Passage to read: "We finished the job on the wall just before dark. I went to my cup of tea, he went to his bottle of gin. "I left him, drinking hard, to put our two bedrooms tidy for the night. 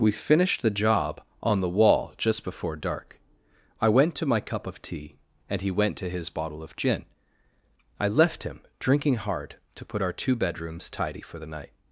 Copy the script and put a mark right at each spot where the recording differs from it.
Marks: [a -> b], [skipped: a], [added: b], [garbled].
"We finished the job on the wall just before dark. I went to my cup of tea, [added: and] he went to his bottle of gin. "I left him, drinking hard, to put our two bedrooms tidy for the night.